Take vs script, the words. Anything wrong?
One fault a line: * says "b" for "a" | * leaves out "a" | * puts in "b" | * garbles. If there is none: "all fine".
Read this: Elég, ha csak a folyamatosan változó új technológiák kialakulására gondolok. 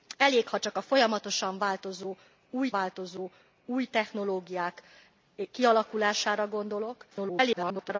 * puts in "változó új"
* garbles